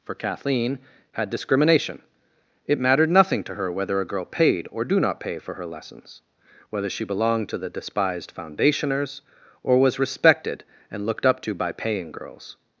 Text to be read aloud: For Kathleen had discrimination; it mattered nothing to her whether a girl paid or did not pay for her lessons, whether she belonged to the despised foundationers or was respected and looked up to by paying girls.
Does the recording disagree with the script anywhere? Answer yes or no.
yes